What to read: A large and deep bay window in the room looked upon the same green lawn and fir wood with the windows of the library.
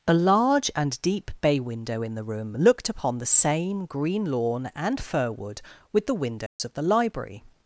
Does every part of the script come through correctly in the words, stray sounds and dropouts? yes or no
no